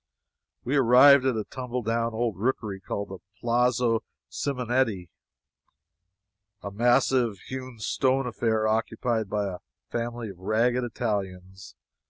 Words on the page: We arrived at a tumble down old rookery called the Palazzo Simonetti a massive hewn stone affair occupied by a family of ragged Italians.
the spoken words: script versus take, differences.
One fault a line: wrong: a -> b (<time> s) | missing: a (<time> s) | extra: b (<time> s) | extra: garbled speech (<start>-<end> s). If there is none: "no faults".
no faults